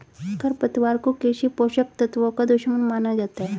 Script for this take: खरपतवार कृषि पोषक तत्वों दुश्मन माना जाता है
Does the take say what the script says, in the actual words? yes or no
no